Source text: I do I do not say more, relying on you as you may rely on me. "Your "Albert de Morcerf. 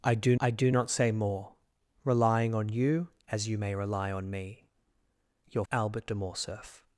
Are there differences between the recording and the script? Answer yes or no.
no